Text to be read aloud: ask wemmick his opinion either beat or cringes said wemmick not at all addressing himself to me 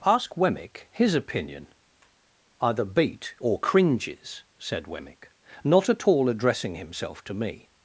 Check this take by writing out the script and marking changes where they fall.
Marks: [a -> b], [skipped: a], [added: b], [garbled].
ask wemmick his opinion either beat or cringes said wemmick not at all addressing himself to me